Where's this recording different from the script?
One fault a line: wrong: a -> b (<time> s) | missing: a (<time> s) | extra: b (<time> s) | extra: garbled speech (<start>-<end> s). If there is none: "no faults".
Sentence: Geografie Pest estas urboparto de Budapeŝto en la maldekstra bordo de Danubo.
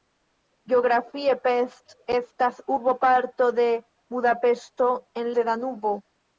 missing: la maldekstra bordo (5.3 s)